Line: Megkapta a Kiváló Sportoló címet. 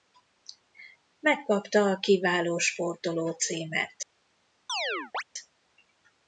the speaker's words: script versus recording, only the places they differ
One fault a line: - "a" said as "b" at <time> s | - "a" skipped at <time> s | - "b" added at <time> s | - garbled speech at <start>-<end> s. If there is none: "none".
none